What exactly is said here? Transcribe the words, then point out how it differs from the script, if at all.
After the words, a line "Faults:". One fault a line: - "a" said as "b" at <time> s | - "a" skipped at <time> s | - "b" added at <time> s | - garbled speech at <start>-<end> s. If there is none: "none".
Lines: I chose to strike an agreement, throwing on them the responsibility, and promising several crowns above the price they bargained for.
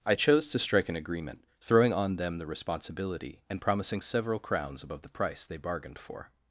I chose to strike an agreement, throwing on them the responsibility, and promising several crowns above the price they bargained for.
Faults:
none